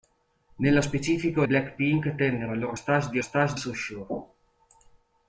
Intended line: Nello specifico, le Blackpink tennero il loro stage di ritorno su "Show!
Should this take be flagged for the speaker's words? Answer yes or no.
yes